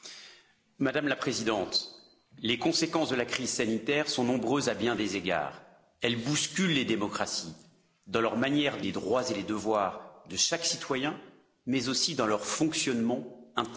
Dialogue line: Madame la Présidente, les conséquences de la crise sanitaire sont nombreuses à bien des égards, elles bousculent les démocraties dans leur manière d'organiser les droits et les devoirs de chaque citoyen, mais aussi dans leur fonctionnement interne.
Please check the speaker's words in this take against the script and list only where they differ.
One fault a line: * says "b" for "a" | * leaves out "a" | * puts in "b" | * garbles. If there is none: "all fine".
* leaves out "d'organiser"